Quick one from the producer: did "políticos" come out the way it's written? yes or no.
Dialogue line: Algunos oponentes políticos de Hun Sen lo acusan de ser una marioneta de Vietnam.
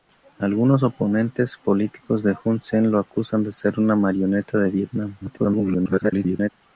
yes